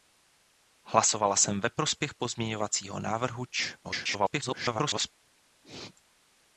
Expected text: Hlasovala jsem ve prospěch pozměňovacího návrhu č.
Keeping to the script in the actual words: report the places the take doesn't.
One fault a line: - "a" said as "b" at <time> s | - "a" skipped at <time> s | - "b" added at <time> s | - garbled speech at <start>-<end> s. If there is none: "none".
- garbled speech at 3.8-5.1 s